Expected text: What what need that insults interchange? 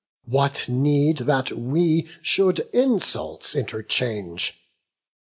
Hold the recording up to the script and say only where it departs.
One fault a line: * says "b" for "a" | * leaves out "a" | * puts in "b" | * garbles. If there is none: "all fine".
* leaves out "what"
* puts in "we should"